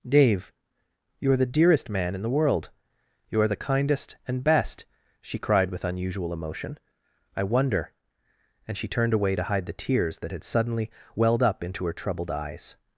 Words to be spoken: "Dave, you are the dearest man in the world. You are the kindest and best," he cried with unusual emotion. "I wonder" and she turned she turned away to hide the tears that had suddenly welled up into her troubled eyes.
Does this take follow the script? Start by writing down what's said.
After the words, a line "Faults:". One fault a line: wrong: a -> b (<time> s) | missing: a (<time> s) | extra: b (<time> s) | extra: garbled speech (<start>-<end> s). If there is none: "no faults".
"Dave, you are the dearest man in the world. You are the kindest and best," she cried with unusual emotion. "I wonder" and she turned away to hide the tears that had suddenly welled up into her troubled eyes.
Faults:
wrong: he -> she (5.2 s)
missing: she turned (9.1 s)